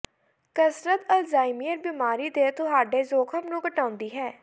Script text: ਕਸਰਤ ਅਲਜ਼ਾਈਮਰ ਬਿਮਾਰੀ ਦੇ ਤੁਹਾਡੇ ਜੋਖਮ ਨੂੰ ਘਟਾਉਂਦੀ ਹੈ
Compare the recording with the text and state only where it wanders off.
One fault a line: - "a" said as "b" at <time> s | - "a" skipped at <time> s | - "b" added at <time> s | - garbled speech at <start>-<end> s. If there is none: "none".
none